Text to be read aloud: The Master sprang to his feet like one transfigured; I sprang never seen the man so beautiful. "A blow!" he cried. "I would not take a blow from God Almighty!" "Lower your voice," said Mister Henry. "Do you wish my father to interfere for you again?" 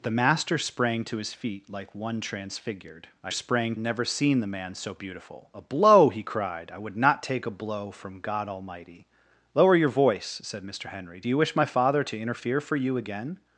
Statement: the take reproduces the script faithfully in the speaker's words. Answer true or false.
true